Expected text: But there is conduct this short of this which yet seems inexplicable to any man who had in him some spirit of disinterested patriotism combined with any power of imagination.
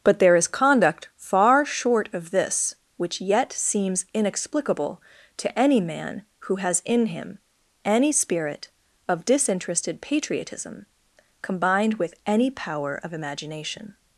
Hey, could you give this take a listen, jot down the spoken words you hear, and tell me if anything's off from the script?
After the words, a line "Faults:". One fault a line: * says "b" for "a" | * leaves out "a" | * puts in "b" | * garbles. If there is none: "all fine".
But there is conduct far short of this which yet seems inexplicable to any man who has in him any spirit of disinterested patriotism combined with any power of imagination.
Faults:
* says "far" for "this"
* says "has" for "had"
* says "any" for "some"